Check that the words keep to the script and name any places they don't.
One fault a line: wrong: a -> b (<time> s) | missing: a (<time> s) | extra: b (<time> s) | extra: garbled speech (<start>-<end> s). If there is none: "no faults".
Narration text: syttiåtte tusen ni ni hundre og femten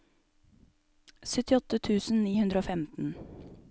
missing: ni (2.3 s)